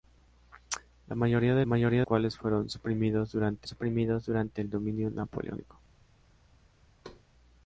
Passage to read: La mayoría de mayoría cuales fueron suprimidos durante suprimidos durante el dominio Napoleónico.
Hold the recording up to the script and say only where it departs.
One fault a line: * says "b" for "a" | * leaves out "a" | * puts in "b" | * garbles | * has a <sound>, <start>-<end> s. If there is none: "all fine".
* has a thud, 7.0-7.2 s